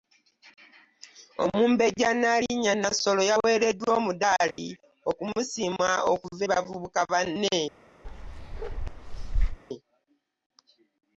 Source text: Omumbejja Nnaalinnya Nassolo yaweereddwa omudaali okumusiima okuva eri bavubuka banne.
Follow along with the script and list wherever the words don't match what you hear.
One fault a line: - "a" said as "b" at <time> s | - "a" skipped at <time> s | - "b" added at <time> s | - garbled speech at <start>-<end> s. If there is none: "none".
- "eri" skipped at 6.4 s